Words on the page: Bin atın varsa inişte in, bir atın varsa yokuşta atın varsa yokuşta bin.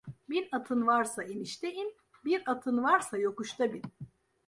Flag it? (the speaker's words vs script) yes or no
yes